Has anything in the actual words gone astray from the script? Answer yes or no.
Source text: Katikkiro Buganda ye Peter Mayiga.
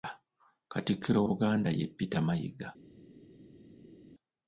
no